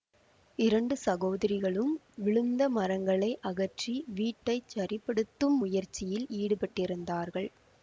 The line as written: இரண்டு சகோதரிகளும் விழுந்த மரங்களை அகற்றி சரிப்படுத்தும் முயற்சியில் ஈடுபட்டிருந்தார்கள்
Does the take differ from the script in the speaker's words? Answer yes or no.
yes